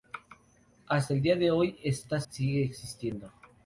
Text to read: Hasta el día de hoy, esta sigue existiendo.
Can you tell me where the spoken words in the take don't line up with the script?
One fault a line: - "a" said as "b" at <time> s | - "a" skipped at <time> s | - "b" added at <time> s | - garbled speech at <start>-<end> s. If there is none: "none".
none